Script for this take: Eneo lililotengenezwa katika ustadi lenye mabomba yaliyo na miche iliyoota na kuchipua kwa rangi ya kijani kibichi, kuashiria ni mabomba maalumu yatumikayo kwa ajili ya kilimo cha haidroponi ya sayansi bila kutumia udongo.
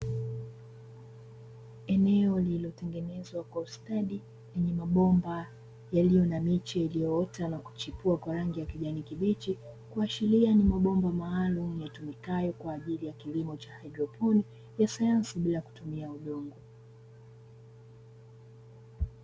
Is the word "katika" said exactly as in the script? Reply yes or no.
no